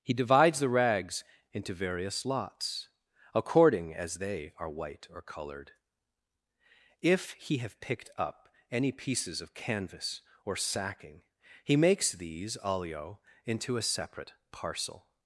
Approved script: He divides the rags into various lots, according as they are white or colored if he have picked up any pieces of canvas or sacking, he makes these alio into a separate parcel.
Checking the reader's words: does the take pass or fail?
pass